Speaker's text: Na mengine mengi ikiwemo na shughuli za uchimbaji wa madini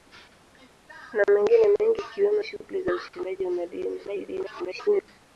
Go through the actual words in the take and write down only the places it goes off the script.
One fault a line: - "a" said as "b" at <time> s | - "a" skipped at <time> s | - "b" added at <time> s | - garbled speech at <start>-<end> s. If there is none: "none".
- "na" skipped at 2.4 s
- garbled speech at 4.0-5.1 s